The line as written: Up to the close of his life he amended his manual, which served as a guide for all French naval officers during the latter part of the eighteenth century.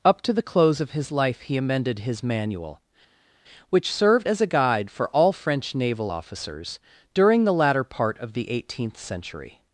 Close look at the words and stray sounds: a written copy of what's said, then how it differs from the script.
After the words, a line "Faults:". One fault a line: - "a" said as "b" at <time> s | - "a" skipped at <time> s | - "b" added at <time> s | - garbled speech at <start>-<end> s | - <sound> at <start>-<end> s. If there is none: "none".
Up to the close of his life he amended his manual, which served as a guide for all French naval officers during the latter part of the eighteenth century.
Faults:
none